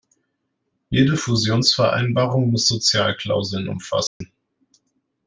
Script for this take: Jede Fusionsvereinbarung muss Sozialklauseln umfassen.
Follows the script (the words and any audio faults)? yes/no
no